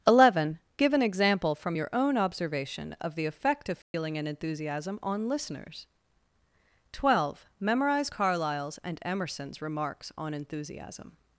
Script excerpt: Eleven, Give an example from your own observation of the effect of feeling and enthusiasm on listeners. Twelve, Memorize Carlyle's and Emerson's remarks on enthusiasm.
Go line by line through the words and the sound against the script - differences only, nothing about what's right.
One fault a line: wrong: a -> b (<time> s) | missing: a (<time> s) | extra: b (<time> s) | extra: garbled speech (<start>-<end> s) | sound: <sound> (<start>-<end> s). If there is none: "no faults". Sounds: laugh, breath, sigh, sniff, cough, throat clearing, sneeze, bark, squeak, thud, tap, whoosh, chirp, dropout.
sound: dropout (3.8-3.9 s)